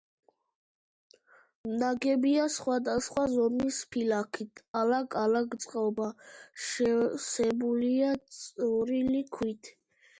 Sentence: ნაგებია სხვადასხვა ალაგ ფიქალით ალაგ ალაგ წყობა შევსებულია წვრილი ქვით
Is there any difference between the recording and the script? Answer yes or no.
yes